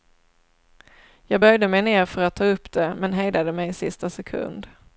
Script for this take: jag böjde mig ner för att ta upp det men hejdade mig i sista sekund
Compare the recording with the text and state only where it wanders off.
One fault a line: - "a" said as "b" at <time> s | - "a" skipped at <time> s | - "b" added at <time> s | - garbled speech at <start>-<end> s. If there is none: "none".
none